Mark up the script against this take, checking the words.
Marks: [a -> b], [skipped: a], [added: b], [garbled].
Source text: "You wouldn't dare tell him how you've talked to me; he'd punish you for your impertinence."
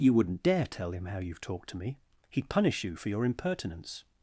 "You wouldn't dare tell him how you've talked to me; he'd punish you for your impertinence."